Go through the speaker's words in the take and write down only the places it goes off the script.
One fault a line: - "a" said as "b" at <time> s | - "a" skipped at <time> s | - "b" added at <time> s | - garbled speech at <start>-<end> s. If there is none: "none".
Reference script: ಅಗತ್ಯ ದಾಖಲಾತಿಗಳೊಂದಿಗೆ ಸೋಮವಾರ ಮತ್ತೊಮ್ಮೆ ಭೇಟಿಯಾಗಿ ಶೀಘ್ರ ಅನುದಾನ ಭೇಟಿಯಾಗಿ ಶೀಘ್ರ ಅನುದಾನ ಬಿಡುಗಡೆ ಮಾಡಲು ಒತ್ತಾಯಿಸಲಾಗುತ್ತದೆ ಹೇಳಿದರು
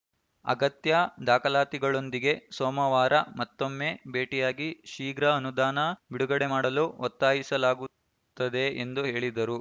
- "ಭೇಟಿಯಾಗಿ ಶೀಘ್ರ ಅನುದಾನ" skipped at 5.8 s
- "ಎಂದು" added at 8.8 s